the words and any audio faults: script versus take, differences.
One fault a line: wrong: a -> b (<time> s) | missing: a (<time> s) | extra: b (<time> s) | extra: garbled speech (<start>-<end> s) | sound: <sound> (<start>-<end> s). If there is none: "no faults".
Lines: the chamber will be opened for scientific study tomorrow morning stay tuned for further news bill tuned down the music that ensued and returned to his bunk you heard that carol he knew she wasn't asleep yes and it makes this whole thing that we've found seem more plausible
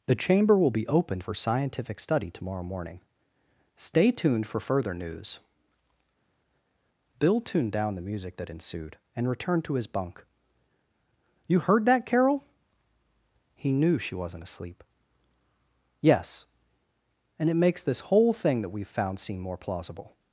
no faults